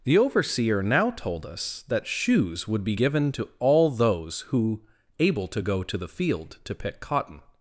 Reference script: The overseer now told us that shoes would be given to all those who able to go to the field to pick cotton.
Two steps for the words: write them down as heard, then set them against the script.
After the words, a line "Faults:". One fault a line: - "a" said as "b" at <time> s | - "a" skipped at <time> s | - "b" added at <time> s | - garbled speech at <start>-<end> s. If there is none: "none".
The overseer now told us that shoes would be given to all those who able to go to the field to pick cotton.
Faults:
none